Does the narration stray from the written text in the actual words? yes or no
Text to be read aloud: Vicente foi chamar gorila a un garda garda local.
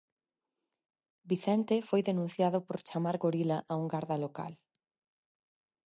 yes